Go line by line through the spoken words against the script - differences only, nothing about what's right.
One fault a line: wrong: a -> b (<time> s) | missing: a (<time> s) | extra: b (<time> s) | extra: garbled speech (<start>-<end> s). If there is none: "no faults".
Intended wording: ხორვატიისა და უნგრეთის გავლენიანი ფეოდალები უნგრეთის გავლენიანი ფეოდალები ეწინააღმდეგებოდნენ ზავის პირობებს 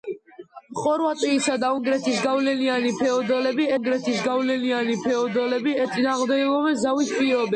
no faults